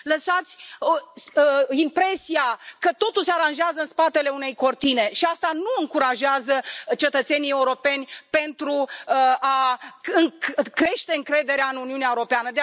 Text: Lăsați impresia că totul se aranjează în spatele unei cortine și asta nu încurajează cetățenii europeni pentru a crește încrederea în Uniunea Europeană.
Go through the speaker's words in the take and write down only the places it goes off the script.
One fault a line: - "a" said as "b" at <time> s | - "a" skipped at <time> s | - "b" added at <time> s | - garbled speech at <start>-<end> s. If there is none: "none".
none